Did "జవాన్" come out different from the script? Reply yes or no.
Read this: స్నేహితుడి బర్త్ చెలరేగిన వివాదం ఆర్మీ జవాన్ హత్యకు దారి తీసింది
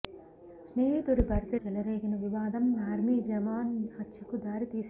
no